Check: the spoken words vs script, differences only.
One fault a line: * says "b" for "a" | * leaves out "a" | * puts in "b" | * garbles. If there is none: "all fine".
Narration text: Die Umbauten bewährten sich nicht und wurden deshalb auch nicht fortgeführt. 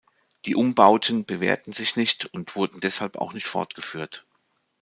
all fine